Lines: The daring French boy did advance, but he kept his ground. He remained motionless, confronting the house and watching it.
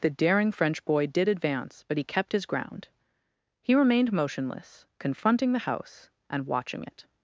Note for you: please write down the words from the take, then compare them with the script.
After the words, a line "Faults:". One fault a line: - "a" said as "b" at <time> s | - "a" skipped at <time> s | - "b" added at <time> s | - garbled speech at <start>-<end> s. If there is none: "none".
The daring French boy did advance, but he kept his ground. He remained motionless, confronting the house and watching it.
Faults:
none